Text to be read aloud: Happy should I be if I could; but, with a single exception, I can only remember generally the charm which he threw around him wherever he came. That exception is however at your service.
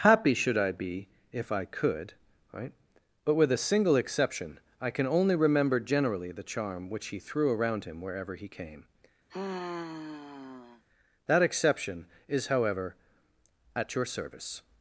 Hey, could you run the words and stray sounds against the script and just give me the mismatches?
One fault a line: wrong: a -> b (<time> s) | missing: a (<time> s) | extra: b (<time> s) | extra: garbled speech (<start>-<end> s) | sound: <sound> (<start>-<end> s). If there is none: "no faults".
extra: right (2.5 s)
sound: sigh (9.3-10.8 s)